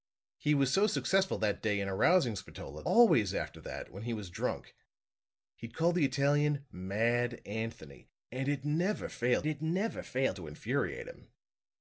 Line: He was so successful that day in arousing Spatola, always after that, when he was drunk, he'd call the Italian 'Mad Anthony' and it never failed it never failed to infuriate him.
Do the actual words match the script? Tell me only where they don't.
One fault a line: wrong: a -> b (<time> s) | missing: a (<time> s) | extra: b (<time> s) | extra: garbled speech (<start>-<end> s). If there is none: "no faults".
no faults